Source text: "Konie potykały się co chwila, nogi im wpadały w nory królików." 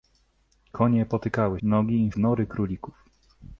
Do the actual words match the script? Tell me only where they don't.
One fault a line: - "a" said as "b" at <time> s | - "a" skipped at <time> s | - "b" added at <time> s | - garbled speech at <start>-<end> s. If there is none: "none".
- "się co chwila" skipped at 1.6 s
- "wpadały" skipped at 2.1 s